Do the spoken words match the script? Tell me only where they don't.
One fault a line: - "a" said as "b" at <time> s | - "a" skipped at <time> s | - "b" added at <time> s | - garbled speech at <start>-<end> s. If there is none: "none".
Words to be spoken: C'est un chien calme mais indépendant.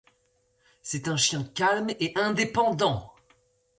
- "mais" said as "et" at 1.9 s